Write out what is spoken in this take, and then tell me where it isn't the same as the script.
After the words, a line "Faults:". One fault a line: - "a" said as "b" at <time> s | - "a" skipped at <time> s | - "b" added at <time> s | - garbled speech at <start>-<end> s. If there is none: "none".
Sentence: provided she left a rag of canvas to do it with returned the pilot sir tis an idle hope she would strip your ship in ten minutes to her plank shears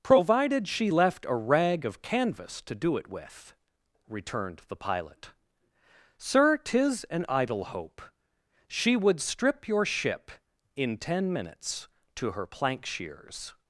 provided she left a rag of canvas to do it with returned the pilot sir tis an idle hope she would strip your ship in ten minutes to her plank shears
Faults:
none